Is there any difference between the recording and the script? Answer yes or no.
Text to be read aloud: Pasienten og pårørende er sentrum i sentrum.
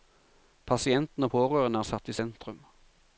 yes